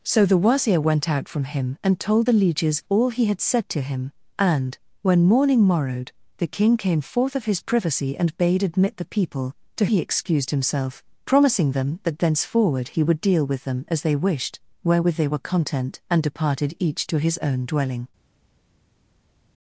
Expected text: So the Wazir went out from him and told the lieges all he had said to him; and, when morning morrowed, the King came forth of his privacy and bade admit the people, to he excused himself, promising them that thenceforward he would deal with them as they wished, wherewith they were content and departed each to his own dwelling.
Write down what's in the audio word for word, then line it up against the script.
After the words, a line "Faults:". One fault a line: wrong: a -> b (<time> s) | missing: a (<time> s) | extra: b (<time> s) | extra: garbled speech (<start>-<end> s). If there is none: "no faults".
So the Wazir went out from him and told the lieges all he had said to him; and, when morning morrowed, the King came forth of his privacy and bade admit the people, to he excused himself, promising them that thenceforward he would deal with them as they wished, wherewith they were content and departed each to his own dwelling.
Faults:
no faults